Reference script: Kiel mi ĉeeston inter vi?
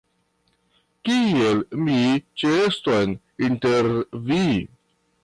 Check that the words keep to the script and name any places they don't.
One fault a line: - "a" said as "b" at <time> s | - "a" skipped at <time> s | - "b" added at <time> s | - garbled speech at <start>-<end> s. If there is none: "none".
none